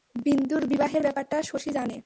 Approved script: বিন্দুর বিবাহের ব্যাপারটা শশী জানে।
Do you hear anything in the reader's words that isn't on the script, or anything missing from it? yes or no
no